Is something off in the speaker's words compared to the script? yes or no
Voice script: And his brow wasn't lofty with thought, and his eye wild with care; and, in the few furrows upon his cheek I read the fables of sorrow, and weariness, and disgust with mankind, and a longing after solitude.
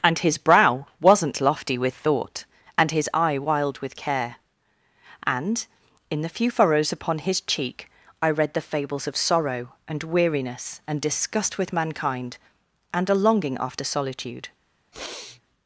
no